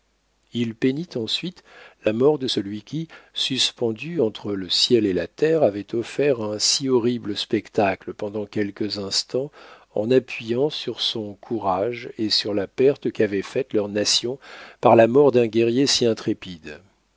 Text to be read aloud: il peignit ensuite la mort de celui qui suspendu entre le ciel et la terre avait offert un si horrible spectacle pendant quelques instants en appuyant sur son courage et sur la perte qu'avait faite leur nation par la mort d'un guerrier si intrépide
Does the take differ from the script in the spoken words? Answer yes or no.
no